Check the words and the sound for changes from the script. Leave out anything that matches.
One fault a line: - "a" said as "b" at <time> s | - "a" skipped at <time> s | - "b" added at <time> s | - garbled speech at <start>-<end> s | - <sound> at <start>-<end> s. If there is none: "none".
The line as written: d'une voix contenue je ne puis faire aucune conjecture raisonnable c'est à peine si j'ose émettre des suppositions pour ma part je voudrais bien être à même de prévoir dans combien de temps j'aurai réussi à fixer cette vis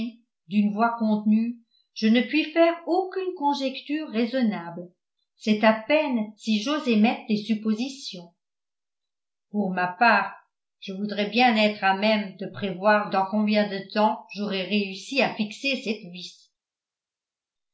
none